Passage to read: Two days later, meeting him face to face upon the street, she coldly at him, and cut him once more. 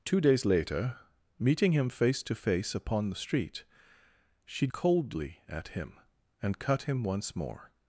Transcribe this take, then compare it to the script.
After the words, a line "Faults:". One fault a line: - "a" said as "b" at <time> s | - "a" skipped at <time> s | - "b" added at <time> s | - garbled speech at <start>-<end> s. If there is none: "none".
Two days later, meeting him face to face upon the street, she coldly at him, and cut him once more.
Faults:
none